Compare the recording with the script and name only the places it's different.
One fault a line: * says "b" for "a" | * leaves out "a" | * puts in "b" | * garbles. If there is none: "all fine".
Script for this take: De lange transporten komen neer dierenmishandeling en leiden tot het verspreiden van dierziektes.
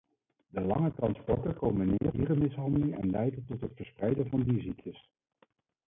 all fine